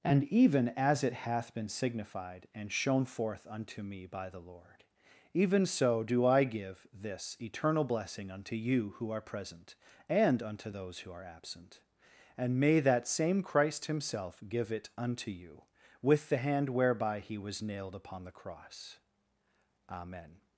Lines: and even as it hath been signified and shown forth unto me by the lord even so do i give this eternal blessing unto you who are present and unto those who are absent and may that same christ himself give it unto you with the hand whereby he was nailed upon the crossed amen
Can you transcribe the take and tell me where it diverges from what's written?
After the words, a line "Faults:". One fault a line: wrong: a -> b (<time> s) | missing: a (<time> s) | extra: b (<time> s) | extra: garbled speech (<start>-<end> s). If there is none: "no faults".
and even as it hath been signified and shown forth unto me by the lord even so do i give this eternal blessing unto you who are present and unto those who are absent and may that same christ himself give it unto you with the hand whereby he was nailed upon the cross amen
Faults:
wrong: crossed -> cross (18.3 s)